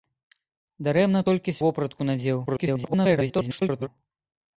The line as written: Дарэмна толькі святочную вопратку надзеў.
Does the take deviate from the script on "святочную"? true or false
true